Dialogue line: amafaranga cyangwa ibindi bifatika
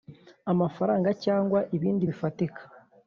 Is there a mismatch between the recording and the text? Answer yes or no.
no